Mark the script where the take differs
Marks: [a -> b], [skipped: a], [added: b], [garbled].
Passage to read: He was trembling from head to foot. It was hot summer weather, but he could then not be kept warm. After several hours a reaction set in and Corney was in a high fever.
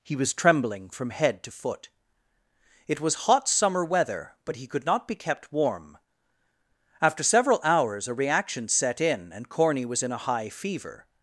He was trembling from head to foot. It was hot summer weather, but he could [skipped: then] not be kept warm. After several hours a reaction set in and Corney was in a high fever.